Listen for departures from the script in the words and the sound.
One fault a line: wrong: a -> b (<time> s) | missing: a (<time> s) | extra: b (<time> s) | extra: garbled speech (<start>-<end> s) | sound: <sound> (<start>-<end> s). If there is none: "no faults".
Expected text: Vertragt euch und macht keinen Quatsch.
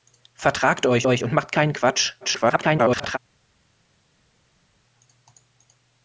extra: euch (1.0 s)
extra: garbled speech (2.2-3.2 s)